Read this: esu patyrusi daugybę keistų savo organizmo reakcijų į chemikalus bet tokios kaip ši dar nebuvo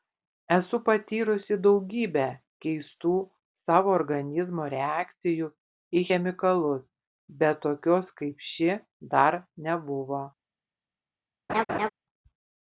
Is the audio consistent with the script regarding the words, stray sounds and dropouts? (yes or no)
no